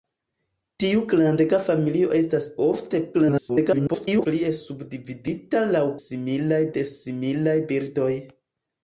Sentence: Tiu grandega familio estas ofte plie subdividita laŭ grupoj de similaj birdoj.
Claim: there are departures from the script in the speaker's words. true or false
true